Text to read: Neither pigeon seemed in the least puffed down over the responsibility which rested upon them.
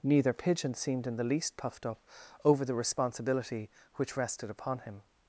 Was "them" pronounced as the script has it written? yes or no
no